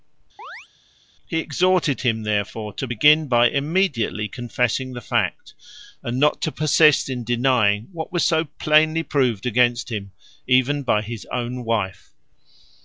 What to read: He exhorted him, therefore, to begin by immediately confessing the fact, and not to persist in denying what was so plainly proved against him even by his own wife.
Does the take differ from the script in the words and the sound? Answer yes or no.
yes